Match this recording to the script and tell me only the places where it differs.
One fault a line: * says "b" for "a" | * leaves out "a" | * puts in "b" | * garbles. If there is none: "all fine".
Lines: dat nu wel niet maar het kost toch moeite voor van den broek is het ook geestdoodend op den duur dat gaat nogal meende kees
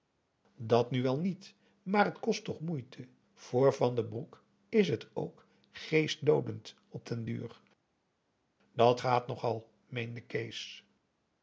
all fine